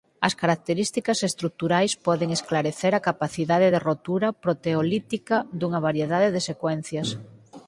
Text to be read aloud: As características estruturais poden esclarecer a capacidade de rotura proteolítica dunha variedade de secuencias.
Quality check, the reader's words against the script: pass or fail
pass